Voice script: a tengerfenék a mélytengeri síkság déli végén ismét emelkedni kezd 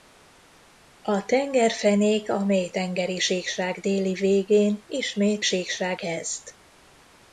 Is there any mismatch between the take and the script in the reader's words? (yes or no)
yes